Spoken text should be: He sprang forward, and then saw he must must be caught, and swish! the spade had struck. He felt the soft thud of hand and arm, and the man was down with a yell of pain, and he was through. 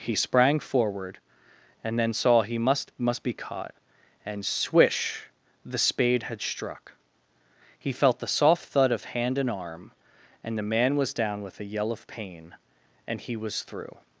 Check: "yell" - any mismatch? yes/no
no